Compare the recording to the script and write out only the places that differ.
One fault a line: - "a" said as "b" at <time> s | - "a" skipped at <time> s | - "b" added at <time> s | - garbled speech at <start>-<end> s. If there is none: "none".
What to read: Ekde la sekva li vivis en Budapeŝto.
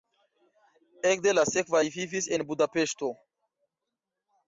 none